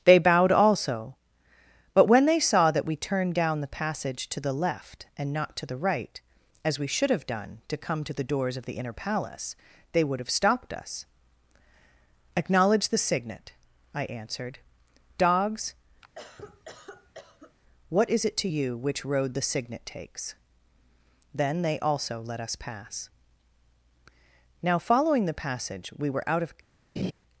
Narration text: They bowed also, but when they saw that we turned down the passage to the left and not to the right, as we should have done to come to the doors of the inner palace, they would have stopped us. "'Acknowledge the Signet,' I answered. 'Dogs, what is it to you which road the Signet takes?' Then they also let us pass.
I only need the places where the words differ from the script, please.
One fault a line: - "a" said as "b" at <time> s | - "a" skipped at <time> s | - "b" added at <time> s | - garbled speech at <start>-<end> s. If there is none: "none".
- "Now following the passage we were out of" added at 24.6 s